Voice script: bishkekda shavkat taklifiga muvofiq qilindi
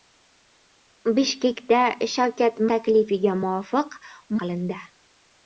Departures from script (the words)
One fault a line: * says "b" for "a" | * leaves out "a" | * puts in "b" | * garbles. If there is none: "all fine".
all fine